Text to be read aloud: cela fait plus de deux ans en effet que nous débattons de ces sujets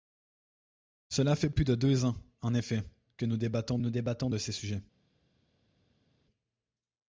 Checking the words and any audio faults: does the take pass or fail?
fail